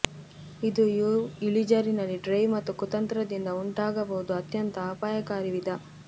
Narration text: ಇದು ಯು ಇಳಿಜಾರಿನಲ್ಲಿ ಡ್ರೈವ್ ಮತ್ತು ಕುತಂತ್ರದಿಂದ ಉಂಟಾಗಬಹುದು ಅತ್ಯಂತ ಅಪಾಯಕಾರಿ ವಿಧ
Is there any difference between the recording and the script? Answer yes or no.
no